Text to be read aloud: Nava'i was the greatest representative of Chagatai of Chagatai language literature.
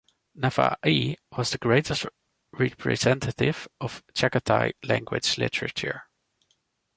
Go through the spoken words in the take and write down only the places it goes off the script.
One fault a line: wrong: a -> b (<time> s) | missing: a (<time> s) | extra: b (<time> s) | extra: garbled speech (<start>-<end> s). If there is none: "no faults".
missing: of Chagatai (4.7 s)